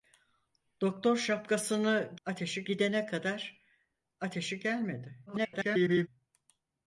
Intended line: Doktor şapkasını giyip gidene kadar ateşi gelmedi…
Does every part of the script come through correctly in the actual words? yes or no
no